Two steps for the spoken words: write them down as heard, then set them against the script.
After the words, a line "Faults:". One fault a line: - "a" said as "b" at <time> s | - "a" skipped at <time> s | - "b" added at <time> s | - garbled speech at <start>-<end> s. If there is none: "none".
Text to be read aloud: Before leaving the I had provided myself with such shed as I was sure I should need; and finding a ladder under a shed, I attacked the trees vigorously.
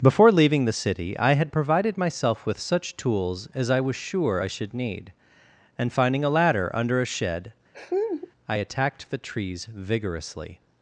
Before leaving the city I had provided myself with such tools as I was sure I should need; and finding a ladder under a shed, I attacked the trees vigorously.
Faults:
- "city" added at 0.7 s
- "shed" said as "tools" at 3.0 s